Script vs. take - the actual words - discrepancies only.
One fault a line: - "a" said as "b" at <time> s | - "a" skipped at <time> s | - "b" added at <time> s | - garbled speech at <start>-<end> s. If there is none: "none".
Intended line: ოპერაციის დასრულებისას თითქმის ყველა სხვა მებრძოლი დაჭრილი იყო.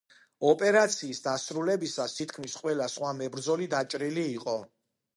none